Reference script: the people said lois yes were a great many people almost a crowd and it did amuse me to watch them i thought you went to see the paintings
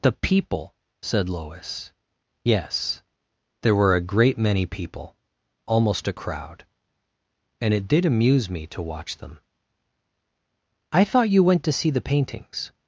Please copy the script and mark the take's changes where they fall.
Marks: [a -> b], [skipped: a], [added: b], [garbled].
the people said lois yes [added: there] were a great many people almost a crowd and it did amuse me to watch them i thought you went to see the paintings